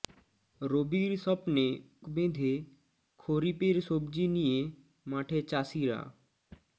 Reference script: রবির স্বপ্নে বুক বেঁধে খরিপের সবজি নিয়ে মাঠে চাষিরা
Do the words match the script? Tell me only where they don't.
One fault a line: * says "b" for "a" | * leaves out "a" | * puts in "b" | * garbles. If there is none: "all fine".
* leaves out "বুক"